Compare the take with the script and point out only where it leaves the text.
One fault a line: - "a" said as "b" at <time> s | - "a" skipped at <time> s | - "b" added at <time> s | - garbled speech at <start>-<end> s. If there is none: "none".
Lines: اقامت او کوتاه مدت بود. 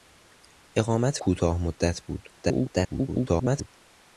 - "او" skipped at 1.2 s
- garbled speech at 2.4-3.7 s